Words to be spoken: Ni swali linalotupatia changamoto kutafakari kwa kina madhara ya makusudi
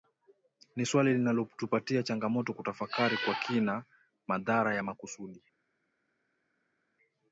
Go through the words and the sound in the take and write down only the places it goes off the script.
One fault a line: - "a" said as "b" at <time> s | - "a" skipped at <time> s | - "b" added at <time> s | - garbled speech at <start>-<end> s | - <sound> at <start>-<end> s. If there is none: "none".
none